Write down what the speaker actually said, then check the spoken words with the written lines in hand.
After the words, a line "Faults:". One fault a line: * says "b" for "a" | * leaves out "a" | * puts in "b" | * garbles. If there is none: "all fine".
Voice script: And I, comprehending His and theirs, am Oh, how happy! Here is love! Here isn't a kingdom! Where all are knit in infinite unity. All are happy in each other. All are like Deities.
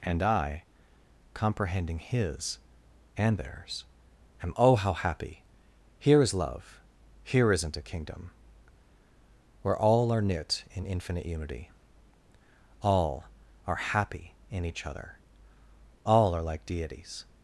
And I, comprehending His and theirs, am Oh, how happy! Here is love! Here isn't a kingdom! Where all are knit in infinite unity. All are happy in each other. All are like Deities.
Faults:
all fine